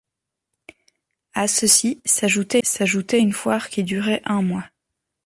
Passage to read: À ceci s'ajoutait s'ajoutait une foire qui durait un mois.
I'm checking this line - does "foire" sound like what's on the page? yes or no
yes